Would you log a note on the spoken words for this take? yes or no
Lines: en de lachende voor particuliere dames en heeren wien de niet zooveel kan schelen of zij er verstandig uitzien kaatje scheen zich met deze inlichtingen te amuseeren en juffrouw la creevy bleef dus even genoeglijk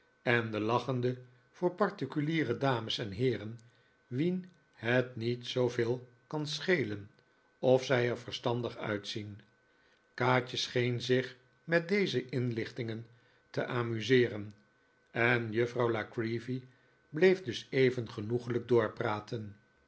yes